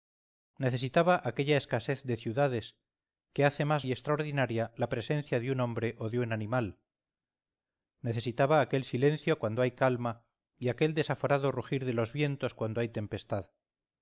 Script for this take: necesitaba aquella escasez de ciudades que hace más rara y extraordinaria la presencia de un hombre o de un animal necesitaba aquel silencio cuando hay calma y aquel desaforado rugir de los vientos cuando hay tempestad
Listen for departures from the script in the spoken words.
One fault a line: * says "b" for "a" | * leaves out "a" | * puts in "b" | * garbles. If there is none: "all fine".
* leaves out "rara"